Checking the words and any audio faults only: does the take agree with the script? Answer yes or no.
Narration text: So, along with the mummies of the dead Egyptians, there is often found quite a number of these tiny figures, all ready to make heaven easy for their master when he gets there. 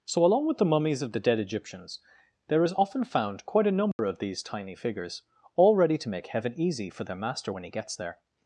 no